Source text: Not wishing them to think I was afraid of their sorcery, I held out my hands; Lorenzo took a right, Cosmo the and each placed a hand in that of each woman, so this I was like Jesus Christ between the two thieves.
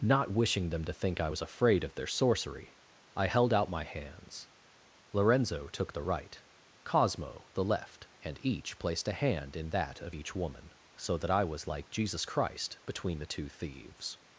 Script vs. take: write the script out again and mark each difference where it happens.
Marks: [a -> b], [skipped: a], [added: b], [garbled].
Not wishing them to think I was afraid of their sorcery, I held out my hands; Lorenzo took [a -> the] right, Cosmo the [added: left] and each placed a hand in that of each woman, so [this -> that] I was like Jesus Christ between the two thieves.